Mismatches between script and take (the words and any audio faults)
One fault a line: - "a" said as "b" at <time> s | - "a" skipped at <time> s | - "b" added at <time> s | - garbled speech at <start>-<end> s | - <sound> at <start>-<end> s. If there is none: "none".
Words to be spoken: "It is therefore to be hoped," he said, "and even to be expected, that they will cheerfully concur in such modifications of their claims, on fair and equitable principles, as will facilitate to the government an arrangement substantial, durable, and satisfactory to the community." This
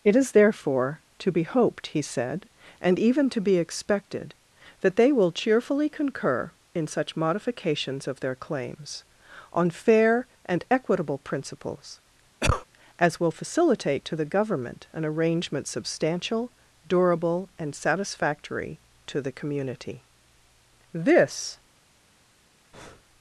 - cough at 12.4-12.6 s
- breath at 22.7-23.0 s